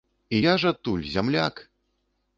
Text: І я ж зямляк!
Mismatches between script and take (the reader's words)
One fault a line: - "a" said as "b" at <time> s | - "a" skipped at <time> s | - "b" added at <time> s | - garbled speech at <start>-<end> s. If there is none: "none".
- "адтуль" added at 0.7 s